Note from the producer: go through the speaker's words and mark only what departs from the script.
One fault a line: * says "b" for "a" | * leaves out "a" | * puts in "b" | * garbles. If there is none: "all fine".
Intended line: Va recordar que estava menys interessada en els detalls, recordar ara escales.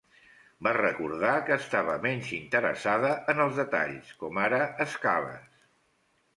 * says "com" for "recordar"